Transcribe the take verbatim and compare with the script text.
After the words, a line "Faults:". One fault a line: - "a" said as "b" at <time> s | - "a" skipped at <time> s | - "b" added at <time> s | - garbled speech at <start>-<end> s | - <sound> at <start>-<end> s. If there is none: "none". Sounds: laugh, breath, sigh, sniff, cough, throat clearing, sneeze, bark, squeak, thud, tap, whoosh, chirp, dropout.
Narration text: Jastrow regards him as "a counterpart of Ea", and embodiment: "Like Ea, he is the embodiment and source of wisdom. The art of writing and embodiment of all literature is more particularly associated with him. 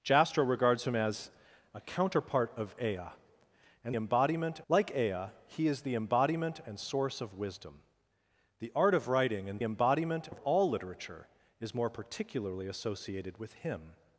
Jastrow regards him as "a counterpart of Ea", and embodiment: "Like Ea, he is the embodiment and source of wisdom. The art of writing and embodiment of all literature is more particularly associated with him.
Faults:
none